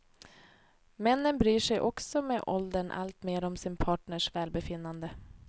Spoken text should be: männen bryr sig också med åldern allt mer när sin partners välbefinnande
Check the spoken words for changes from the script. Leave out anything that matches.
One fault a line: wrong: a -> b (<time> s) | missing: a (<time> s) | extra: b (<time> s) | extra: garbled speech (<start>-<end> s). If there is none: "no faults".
wrong: när -> om (3.4 s)